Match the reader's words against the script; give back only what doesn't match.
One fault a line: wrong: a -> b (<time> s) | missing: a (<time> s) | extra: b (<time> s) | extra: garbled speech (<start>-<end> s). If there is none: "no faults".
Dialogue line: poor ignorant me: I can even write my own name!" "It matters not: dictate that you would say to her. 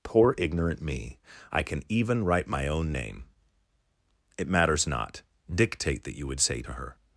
no faults